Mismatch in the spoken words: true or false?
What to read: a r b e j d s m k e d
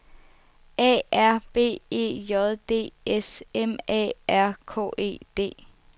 true